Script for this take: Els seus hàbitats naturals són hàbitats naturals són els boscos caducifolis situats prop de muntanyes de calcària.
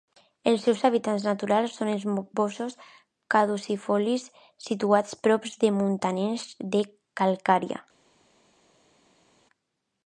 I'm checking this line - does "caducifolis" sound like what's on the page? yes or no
yes